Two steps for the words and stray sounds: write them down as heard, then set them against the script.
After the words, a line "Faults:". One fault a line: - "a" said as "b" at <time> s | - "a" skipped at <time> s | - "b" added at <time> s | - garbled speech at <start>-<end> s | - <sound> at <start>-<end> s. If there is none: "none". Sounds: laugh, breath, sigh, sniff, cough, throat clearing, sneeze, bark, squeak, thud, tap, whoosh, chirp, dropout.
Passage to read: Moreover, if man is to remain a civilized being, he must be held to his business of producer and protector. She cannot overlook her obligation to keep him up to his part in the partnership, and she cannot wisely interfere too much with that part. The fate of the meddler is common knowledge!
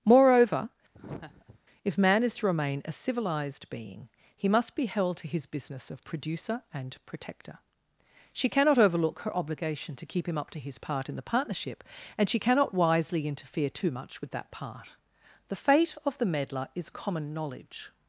Moreover, if man is to remain a civilized being, he must be held to his business of producer and protector. She cannot overlook her obligation to keep him up to his part in the partnership, and she cannot wisely interfere too much with that part. The fate of the meddler is common knowledge!
Faults:
- laugh at 0.9-1.6 s